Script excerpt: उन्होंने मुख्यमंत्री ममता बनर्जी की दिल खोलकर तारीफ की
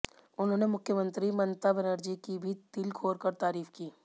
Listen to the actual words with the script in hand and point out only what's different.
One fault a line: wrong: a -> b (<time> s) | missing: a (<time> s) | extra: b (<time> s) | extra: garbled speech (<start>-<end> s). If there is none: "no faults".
extra: भी (2.4 s)